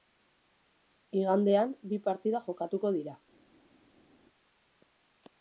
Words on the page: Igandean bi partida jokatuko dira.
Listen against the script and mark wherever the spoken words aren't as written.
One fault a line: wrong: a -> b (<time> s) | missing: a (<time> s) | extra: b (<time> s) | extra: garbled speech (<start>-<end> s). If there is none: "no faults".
no faults